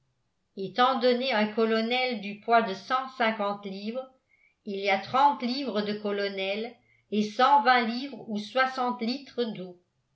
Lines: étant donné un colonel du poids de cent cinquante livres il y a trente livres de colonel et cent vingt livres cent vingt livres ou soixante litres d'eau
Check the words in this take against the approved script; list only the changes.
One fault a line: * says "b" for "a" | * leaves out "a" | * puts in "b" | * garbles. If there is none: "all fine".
* leaves out "cent vingt livres"